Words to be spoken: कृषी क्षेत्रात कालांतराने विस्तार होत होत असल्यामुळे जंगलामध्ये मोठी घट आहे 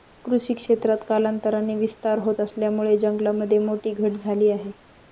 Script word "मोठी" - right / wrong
right